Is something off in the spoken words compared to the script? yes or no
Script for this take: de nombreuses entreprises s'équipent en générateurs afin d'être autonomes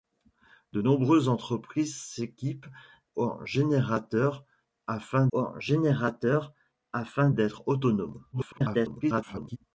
yes